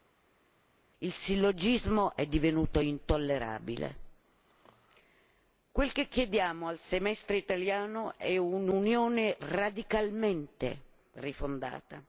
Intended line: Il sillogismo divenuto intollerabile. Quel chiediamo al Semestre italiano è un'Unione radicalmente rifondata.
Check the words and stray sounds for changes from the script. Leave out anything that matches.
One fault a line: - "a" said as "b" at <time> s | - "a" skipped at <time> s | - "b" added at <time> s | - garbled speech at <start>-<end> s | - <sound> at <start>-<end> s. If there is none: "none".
- "è" added at 2.2 s
- "che" added at 5.9 s